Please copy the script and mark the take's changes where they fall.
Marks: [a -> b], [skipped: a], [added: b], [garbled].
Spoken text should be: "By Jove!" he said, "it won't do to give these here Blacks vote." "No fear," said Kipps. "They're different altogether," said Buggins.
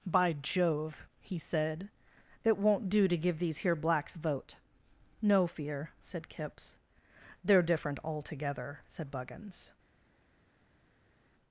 "By Jove!" he said, "it won't do to give these here Blacks vote." "No fear," said Kipps. "They're different altogether," said Buggins.